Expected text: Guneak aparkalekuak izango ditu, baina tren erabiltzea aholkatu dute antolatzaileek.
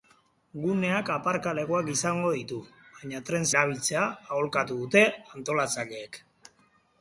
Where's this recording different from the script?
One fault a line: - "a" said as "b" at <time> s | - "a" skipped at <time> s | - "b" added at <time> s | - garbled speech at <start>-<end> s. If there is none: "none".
none